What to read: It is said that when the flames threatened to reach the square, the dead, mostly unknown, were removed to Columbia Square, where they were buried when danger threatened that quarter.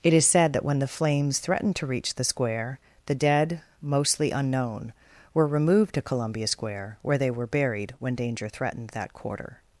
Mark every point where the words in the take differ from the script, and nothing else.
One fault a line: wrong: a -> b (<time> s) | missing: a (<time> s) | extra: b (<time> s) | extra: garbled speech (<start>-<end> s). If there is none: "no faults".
no faults